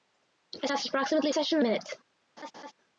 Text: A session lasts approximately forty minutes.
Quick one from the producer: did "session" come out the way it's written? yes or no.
no